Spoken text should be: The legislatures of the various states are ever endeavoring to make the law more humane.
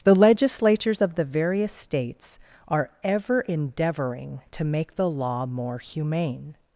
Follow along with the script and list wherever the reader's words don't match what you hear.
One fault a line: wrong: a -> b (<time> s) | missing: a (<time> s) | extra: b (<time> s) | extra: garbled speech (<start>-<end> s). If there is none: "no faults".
no faults